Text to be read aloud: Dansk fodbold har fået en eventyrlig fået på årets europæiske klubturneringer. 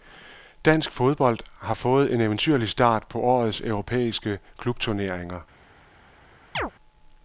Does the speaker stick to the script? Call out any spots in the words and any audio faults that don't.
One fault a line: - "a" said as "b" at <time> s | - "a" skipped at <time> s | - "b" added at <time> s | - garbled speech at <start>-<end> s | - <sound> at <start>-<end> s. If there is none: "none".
- "fået" said as "start" at 2.7 s
- chirp at 6.5-6.7 s